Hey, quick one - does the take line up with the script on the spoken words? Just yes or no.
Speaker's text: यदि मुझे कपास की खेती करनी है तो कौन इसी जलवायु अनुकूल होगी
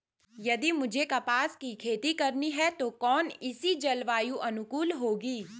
yes